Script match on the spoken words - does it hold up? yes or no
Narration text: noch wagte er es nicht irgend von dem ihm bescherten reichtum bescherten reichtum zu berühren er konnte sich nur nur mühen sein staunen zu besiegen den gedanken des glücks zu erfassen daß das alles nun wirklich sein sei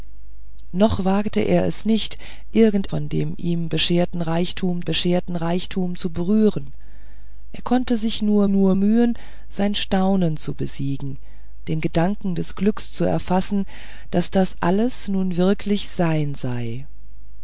yes